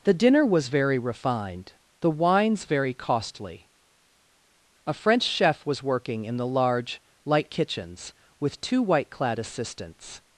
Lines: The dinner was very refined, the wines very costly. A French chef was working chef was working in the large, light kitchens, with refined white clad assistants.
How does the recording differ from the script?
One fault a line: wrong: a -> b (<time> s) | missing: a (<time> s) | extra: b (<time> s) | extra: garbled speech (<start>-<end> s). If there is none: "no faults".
missing: chef was working (6.2 s)
wrong: refined -> two (8.6 s)